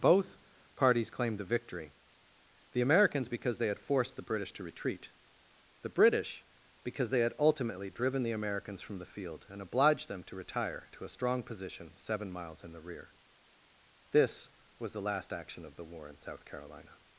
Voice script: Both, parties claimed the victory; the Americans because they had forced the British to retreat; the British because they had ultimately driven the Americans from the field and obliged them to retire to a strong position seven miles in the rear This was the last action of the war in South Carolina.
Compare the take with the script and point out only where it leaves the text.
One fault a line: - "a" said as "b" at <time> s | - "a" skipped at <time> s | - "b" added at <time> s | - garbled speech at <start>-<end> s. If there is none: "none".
none